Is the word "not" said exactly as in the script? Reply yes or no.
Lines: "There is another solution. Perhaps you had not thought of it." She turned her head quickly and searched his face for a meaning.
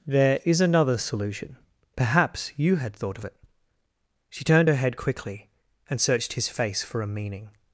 no